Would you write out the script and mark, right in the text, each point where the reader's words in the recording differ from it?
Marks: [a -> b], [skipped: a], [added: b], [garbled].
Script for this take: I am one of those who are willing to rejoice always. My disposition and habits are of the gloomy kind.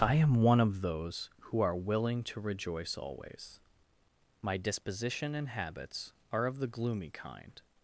I am one of those who are willing to rejoice always. My disposition and habits are of the gloomy kind.